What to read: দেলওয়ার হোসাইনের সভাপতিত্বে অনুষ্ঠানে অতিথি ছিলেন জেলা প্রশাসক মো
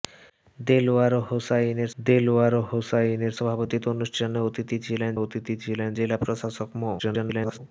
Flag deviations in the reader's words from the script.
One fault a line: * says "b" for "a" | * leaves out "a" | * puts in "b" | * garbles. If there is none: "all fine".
* puts in "দেলওয়ার হোসাইনের"
* puts in "অতিথি ছিলেন"
* garbles